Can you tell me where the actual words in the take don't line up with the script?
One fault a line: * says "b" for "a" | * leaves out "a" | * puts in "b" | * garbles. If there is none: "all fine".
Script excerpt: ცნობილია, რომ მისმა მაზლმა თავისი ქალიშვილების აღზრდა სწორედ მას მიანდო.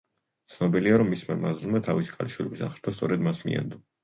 all fine